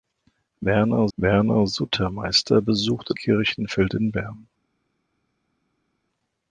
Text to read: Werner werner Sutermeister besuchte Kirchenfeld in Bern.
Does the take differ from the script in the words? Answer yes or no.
no